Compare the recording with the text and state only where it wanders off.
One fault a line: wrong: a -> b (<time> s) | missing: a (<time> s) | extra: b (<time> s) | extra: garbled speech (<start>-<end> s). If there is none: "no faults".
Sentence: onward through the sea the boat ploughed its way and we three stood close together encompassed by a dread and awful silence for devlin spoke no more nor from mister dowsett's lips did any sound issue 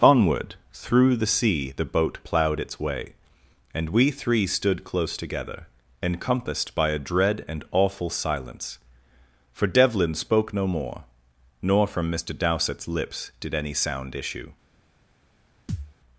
no faults